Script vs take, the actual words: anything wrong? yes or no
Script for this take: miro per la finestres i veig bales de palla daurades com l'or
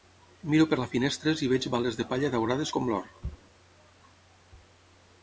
no